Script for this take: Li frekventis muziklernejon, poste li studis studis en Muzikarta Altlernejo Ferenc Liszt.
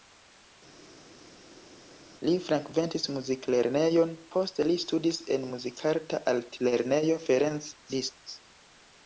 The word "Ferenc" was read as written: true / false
true